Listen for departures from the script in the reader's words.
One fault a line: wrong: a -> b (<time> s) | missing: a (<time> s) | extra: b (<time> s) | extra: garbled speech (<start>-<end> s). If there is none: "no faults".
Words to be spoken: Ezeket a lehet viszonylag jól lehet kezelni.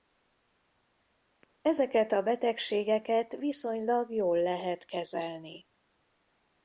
wrong: lehet -> betegségeket (2.2 s)